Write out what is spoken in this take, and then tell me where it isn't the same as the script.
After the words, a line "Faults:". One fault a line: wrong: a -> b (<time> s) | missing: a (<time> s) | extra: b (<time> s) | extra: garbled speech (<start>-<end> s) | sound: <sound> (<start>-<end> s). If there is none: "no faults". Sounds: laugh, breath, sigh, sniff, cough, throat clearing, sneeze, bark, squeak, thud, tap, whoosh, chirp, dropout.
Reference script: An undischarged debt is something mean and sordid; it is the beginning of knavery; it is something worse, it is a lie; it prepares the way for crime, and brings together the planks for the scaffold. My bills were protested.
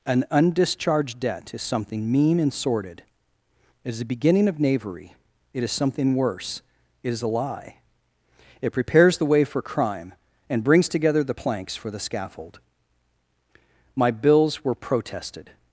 An undischarged debt is something mean and sordid; it is the beginning of knavery; it is something worse, it is a lie; it prepares the way for crime, and brings together the planks for the scaffold. My bills were protested.
Faults:
no faults